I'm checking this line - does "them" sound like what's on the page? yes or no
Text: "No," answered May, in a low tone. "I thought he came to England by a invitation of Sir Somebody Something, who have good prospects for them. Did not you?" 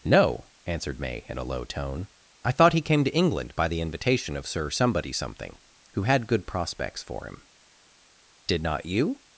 no